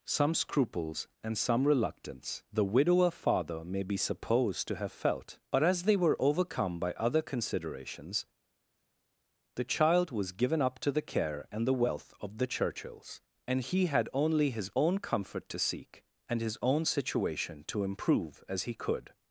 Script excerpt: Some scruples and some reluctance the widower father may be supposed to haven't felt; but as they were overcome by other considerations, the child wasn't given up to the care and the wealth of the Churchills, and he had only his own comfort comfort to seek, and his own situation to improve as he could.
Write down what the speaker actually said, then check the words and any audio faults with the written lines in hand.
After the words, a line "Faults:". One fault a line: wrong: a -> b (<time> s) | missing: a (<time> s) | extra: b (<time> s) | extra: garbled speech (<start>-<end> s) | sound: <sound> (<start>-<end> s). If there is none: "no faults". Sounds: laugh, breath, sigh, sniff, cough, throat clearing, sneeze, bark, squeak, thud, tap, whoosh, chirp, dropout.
Some scruples and some reluctance the widower father may be supposed to have felt; but as they were overcome by other considerations, the child was given up to the care and the wealth of the Churchills, and he had only his own comfort to seek, and his own situation to improve as he could.
Faults:
wrong: haven't -> have (4.8 s)
wrong: wasn't -> was (10.1 s)
missing: comfort (15.5 s)